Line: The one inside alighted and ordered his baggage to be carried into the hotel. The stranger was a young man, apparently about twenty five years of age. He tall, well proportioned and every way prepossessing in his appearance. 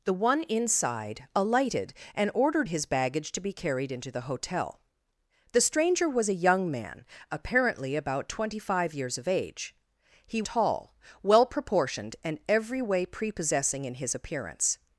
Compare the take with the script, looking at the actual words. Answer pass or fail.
pass